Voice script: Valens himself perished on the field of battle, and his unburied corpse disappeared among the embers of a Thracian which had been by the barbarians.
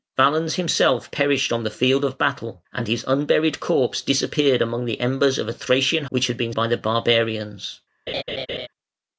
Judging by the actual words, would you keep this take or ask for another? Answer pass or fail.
pass